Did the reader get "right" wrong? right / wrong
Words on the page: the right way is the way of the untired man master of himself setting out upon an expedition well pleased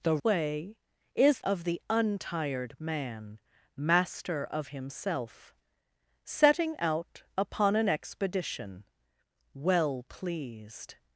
wrong